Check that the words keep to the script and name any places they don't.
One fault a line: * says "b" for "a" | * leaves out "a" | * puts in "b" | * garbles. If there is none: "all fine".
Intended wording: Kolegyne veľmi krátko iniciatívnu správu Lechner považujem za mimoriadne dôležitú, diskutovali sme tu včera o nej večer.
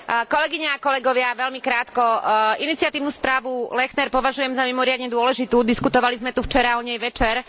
* puts in "a kolegovia"